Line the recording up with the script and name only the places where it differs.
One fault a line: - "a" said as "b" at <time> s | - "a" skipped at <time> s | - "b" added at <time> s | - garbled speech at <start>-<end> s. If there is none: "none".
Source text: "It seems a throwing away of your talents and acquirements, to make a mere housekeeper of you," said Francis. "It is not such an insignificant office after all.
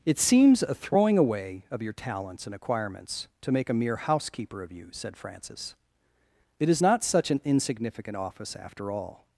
none